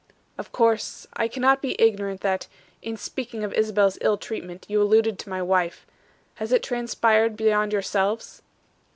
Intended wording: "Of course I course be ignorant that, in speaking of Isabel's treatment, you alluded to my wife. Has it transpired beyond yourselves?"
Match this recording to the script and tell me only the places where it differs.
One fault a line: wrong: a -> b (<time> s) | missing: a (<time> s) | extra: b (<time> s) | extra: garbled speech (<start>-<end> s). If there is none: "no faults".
wrong: course -> cannot (1.3 s)
extra: ill (4.0 s)